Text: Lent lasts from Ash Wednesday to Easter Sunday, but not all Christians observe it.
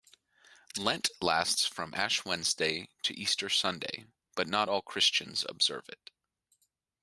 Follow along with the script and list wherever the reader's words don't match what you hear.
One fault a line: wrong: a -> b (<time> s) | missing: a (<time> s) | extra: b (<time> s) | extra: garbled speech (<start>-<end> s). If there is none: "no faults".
no faults